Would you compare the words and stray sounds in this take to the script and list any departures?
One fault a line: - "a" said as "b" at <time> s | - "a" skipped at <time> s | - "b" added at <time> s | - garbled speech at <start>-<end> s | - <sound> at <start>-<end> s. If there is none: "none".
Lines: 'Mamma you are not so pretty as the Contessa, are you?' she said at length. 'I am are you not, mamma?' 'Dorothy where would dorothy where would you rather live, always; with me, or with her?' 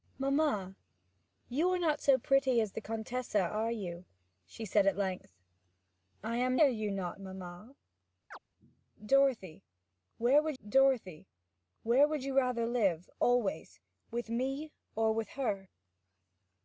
- chirp at 8.3-8.4 s